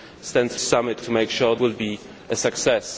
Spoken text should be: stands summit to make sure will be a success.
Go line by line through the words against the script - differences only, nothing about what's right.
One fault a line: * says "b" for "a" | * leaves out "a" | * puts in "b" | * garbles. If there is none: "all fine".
all fine